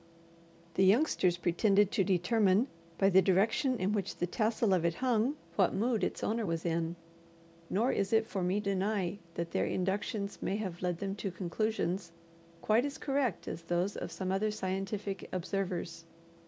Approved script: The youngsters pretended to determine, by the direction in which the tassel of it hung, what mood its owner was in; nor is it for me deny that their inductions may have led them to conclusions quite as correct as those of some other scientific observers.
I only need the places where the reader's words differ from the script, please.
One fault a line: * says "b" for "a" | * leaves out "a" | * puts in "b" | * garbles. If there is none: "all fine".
all fine